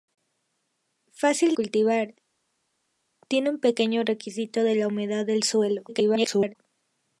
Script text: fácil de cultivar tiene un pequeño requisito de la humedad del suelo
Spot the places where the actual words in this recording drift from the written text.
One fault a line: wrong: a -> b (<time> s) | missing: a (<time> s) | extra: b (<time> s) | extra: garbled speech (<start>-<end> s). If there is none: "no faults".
missing: de (1.5 s)
extra: garbled speech (5.9-6.6 s)